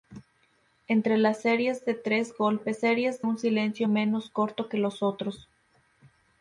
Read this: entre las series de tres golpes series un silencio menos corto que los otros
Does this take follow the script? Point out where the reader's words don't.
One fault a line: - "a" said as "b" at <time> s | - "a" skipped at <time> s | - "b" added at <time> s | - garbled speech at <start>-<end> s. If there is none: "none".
none